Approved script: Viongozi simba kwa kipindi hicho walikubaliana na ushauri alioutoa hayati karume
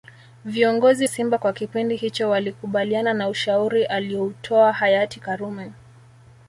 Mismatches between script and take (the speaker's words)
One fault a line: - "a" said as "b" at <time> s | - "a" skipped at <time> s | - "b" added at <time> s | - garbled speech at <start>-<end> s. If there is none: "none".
none